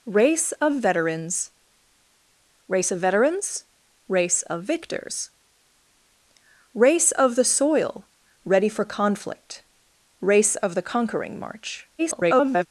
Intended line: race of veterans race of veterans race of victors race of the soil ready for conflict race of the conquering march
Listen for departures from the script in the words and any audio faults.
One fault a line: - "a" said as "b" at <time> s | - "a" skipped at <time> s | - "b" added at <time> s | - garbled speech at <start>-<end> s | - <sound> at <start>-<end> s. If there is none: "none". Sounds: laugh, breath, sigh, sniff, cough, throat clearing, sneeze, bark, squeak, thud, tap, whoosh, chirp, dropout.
- garbled speech at 12.0-12.7 s